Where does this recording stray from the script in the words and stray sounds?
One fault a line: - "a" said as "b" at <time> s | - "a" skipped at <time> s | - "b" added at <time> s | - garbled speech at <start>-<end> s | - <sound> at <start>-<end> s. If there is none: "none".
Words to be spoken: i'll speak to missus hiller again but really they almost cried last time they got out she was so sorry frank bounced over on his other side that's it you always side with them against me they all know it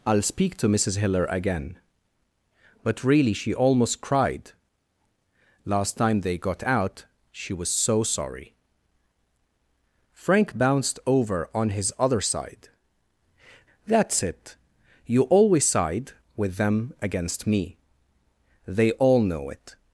- "they" said as "she" at 3.3 s